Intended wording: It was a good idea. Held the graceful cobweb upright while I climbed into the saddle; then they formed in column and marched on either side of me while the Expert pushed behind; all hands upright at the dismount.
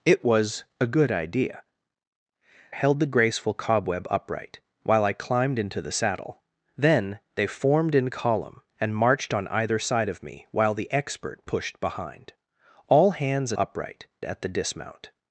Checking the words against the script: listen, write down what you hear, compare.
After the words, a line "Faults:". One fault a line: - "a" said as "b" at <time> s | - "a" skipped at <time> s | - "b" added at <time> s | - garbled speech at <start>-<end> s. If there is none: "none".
It was a good idea. Held the graceful cobweb upright while I climbed into the saddle; then they formed in column and marched on either side of me while the Expert pushed behind; all hands upright at the dismount.
Faults:
none